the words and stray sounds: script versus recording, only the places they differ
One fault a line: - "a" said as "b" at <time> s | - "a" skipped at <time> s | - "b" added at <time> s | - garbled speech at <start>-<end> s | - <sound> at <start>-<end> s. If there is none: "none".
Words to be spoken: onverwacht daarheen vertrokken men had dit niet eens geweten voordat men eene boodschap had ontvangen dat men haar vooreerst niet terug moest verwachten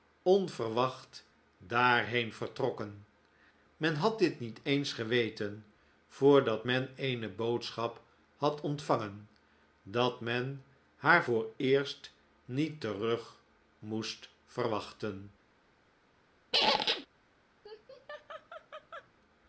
- squeak at 16.5-17.1 s
- laugh at 17.6-19.1 s